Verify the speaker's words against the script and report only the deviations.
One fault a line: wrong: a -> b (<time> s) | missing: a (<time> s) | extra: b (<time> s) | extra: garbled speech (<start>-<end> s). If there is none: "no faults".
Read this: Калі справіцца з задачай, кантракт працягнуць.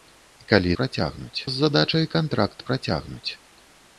wrong: справіцца -> працягнуць (0.8 s)